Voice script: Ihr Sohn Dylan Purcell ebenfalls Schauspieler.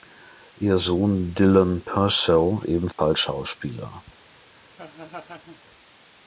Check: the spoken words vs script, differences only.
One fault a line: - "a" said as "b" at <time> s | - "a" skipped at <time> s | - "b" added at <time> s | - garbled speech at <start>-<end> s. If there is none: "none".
none